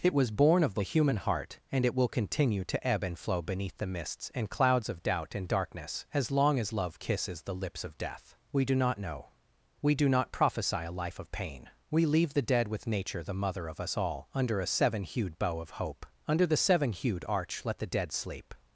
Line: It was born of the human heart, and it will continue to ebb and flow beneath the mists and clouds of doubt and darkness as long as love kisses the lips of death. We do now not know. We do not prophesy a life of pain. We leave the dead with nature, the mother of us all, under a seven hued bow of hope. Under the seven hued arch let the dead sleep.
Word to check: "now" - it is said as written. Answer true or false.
false